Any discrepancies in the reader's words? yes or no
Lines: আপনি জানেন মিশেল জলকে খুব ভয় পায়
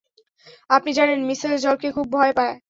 no